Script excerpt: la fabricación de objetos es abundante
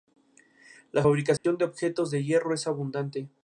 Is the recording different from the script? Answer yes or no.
yes